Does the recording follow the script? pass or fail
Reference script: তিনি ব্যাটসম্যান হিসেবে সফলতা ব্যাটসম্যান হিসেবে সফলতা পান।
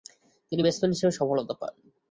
fail